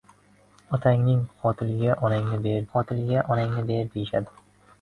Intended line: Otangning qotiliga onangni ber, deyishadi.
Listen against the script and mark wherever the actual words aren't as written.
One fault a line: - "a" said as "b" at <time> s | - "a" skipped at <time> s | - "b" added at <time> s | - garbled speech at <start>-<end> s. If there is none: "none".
- "qotiliga onangni ber" added at 2.8 s